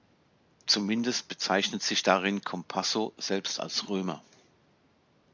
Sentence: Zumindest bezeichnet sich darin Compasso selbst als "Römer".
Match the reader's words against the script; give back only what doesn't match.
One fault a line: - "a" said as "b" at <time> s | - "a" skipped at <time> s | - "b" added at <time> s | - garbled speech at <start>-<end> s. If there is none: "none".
none